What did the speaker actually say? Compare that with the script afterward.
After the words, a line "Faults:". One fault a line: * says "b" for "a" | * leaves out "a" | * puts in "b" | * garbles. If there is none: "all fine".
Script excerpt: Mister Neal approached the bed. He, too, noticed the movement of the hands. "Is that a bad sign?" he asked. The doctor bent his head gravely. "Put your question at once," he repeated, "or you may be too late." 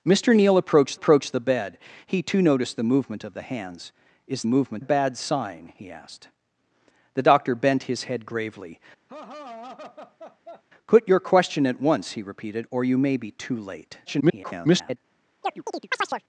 Mister Neal approached approached the bed. He, too, noticed the movement of the hands. "Is movement a bad sign?" he asked. The doctor bent his head gravely. "Put your question at once," he repeated, "or you may be too late." [garbled]
Faults:
* puts in "approached"
* says "movement" for "that"
* garbles